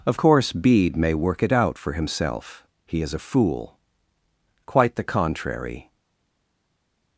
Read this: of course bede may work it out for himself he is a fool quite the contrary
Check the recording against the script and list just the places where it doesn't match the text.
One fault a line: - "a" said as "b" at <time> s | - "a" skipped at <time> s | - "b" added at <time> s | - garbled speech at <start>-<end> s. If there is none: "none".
none